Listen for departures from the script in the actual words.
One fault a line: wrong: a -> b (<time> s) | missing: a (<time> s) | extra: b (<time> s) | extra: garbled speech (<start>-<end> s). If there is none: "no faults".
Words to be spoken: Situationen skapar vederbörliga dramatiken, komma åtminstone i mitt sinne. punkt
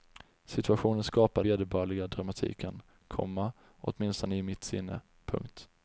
no faults